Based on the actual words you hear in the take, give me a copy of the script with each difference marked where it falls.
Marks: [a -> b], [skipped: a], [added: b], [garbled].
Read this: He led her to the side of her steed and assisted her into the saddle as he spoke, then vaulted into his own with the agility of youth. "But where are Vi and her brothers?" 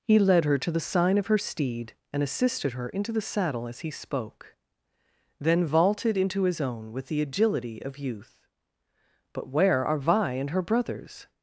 He led her to the [side -> sign] of her steed and assisted her into the saddle as he spoke, then vaulted into his own with the agility of youth. "But where are Vi and her brothers?"